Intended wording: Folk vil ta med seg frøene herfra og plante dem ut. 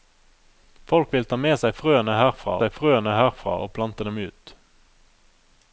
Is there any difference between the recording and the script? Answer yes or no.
yes